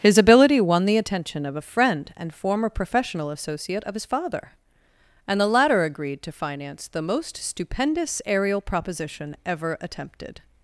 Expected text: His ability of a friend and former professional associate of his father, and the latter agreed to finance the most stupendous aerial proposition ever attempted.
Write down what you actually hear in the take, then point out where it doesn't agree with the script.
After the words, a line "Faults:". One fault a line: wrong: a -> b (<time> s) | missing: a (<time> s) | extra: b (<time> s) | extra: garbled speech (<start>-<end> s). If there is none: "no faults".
His ability won the attention of a friend and former professional associate of his father, and the latter agreed to finance the most stupendous aerial proposition ever attempted.
Faults:
extra: won the attention (0.6 s)